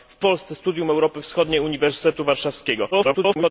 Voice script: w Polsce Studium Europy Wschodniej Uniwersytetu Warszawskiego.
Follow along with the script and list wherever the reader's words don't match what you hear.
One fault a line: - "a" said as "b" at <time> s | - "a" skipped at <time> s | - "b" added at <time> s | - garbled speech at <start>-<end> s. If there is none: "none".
- garbled speech at 2.9-3.5 s